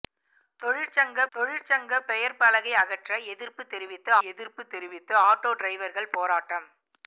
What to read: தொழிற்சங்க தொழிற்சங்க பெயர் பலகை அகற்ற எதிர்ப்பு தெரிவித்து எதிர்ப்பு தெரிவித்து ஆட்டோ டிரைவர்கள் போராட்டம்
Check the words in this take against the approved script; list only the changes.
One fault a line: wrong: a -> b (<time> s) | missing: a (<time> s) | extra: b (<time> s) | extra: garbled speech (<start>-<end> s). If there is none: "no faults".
no faults